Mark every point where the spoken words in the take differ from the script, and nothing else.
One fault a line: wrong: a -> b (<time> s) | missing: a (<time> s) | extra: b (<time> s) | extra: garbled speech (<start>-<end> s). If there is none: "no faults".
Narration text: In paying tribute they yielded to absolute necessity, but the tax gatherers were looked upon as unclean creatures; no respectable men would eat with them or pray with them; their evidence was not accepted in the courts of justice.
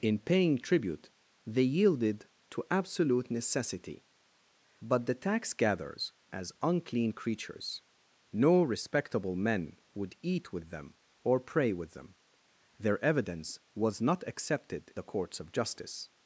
missing: were looked upon (6.1 s)
missing: in (14.9 s)